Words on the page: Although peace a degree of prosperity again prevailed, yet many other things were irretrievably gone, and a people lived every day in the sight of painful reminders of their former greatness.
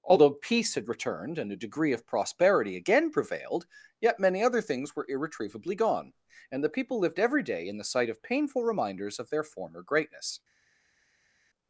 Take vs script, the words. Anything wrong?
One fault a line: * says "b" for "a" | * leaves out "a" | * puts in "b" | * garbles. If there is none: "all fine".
* puts in "had returned and"
* says "the" for "a"